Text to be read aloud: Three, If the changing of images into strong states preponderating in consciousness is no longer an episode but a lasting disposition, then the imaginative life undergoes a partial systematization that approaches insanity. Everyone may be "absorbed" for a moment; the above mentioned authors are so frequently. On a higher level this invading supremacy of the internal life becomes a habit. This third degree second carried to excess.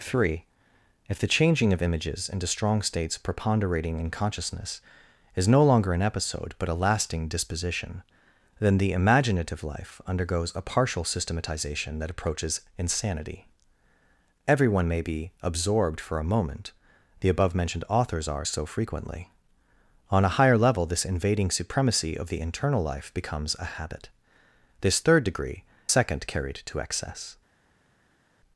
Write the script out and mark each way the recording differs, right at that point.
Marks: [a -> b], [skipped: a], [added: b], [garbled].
Three, If the changing of images into strong states preponderating in consciousness is no longer an episode but a lasting disposition, then the imaginative life undergoes a partial systematization that approaches insanity. Everyone may be "absorbed" for a moment; the above mentioned authors are so frequently. On a higher level this invading supremacy of the internal life becomes a habit. This third degree second carried to excess.